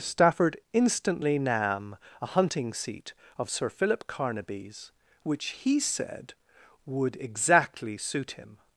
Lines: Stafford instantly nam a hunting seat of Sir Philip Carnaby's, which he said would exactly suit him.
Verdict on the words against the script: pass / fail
pass